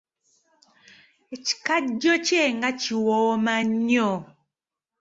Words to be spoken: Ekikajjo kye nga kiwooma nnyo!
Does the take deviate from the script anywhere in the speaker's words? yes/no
no